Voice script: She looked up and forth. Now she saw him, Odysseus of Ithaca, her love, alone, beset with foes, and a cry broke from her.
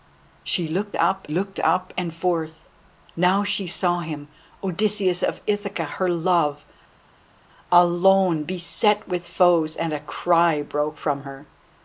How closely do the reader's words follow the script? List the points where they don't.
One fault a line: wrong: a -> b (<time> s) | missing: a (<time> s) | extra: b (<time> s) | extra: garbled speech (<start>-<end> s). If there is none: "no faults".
extra: looked up (1.3 s)